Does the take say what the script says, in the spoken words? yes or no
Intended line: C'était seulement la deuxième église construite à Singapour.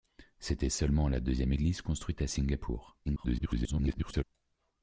no